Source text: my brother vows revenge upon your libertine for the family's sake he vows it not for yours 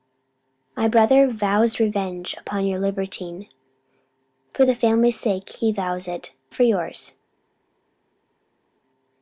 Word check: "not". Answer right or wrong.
wrong